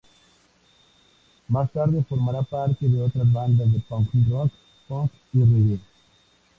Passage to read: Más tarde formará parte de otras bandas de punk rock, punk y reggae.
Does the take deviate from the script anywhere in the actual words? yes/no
no